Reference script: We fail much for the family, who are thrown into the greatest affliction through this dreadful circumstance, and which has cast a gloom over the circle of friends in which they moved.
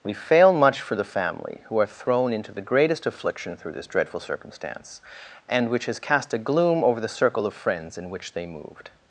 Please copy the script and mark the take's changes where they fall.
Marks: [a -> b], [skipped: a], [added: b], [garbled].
We fail much for the family, who are thrown into the greatest affliction through this dreadful circumstance, and which has cast a gloom over the circle of friends in which they moved.